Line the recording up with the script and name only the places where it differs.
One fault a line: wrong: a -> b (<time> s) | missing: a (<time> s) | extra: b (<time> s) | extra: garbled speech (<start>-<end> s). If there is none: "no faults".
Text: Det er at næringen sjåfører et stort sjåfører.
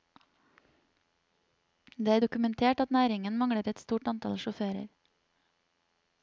extra: dokumentert (2.2 s)
wrong: sjåfører -> mangler (3.4 s)
extra: antall (4.1 s)